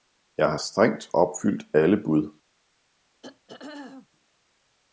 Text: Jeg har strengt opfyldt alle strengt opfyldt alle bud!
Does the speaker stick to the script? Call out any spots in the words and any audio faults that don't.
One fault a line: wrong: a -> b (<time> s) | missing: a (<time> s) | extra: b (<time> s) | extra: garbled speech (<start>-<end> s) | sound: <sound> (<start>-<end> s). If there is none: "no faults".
missing: strengt opfyldt alle (2.0 s)
sound: throat clearing (3.2-4.1 s)